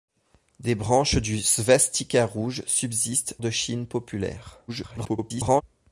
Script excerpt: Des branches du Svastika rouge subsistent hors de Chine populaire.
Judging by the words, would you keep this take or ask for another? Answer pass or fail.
fail